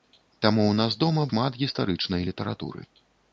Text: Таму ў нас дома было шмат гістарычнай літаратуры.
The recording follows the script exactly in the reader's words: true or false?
false